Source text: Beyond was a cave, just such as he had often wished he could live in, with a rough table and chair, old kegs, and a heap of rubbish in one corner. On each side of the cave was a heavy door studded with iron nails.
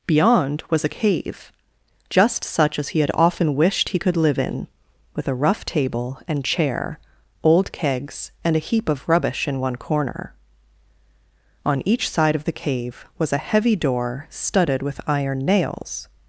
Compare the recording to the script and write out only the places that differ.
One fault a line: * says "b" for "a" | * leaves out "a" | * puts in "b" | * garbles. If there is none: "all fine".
all fine